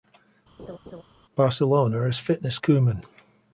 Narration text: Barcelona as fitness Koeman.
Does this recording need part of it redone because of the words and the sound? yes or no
yes